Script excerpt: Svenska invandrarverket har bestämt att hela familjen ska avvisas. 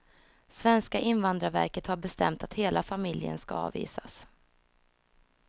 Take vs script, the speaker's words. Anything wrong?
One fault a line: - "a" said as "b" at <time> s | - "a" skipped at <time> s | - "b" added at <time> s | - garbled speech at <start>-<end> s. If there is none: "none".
none